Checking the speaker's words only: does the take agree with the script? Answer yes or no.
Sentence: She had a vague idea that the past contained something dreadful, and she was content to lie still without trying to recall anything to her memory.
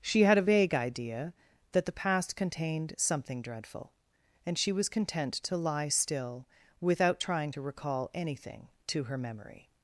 yes